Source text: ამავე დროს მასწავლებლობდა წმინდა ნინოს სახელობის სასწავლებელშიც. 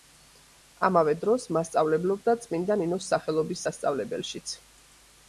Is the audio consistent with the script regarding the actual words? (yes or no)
yes